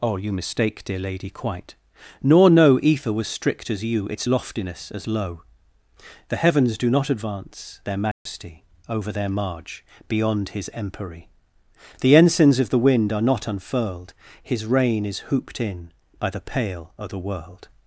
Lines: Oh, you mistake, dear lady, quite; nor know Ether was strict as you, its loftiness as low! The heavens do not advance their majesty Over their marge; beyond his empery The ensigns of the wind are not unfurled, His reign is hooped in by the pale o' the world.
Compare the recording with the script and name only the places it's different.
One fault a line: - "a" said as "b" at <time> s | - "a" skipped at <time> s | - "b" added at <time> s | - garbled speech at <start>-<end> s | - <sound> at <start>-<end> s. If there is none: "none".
- dropout at 8.1-8.3 s